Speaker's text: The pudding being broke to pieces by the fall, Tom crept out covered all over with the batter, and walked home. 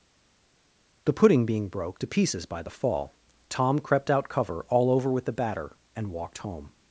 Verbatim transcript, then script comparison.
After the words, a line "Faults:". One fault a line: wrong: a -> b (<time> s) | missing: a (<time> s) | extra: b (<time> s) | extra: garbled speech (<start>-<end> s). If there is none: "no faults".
The pudding being broke to pieces by the fall, Tom crept out cover all over with the batter, and walked home.
Faults:
wrong: covered -> cover (4.3 s)